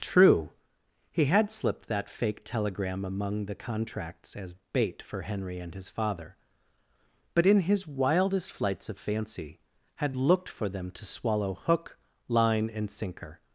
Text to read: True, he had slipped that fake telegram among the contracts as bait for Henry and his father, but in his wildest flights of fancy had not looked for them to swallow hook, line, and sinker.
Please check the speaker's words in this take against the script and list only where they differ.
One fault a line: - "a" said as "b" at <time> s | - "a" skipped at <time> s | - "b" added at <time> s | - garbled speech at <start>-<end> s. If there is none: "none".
- "not" skipped at 10.2 s